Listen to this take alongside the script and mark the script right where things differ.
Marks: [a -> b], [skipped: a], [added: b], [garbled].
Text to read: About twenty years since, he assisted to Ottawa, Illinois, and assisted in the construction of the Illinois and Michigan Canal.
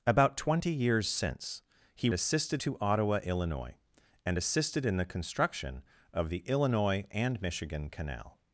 About twenty years since, he assisted to Ottawa, Illinois, and assisted in the construction of the Illinois and Michigan Canal.